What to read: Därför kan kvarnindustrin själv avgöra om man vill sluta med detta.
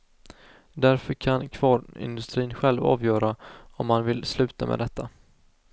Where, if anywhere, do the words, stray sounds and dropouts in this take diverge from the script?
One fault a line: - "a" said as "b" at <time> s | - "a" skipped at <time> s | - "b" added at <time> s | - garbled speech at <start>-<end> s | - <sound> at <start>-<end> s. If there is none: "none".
none